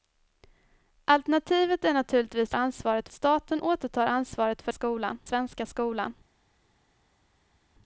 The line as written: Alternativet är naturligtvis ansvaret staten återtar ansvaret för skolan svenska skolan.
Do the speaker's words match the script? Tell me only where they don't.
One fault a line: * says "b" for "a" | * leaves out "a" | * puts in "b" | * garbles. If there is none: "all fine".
all fine